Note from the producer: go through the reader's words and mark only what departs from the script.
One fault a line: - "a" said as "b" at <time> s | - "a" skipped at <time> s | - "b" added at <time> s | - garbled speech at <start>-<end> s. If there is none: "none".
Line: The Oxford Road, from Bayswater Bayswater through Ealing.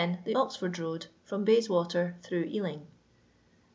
- "Bayswater" skipped at 2.2 s